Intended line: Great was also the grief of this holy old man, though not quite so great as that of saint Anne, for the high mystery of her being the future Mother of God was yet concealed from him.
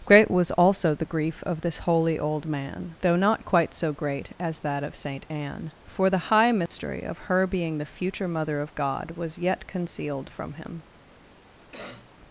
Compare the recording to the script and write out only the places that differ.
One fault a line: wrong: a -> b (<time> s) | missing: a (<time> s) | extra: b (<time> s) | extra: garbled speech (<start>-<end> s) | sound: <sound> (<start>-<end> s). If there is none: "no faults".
sound: dropout (6.7-6.7 s)
sound: cough (11.7-12.1 s)